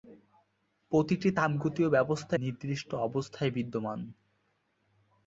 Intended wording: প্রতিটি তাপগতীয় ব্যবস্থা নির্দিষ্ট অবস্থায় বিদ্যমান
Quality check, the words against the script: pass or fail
pass